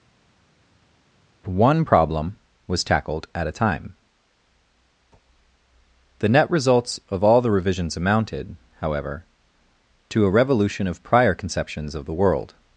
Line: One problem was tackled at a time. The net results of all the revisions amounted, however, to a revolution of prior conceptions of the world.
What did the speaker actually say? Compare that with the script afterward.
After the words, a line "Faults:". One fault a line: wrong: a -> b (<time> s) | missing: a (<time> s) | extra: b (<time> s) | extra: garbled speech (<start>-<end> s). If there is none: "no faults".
One problem was tackled at a time. The net results of all the revisions amounted, however, to a revolution of prior conceptions of the world.
Faults:
no faults